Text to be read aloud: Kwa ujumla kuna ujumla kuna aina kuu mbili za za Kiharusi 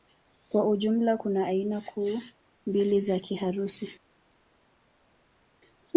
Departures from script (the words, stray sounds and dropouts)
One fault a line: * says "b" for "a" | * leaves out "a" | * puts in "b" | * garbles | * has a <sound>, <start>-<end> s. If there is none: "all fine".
* leaves out "ujumla kuna"
* leaves out "za"